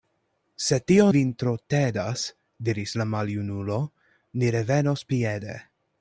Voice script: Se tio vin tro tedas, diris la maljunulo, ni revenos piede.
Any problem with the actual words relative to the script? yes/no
no